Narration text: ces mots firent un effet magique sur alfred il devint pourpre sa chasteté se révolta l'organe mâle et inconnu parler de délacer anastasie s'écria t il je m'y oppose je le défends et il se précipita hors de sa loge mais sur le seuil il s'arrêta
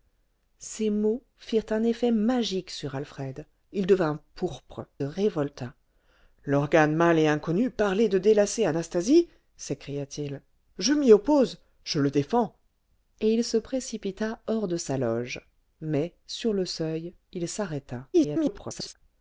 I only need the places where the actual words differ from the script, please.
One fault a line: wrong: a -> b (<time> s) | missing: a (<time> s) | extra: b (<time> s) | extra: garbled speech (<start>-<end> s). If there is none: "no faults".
missing: sa chasteté se (4.9 s)
extra: garbled speech (18.1-18.9 s)